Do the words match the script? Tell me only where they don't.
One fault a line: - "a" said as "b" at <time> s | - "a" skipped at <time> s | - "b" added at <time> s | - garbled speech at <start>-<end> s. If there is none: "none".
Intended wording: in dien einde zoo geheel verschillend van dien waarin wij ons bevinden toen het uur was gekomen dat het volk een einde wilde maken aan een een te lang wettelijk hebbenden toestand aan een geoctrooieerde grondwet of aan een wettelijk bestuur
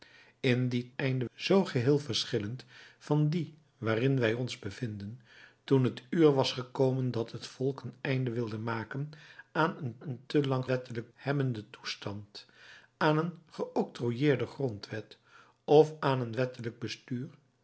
none